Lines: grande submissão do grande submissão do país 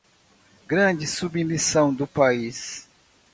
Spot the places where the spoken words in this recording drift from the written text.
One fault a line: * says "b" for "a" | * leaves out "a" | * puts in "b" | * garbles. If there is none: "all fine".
* leaves out "grande submissão do"